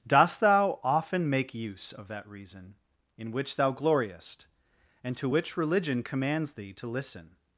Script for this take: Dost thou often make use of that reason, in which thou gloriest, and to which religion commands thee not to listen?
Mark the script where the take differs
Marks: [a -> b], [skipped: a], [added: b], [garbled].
Dost thou often make use of that reason, in which thou gloriest, and to which religion commands thee [skipped: not] to listen?